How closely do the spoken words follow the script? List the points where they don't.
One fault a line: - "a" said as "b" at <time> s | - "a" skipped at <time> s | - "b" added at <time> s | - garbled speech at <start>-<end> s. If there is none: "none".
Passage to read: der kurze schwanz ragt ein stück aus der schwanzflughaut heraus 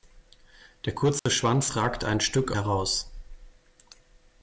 - "aus der schwanzflughaut" skipped at 2.5 s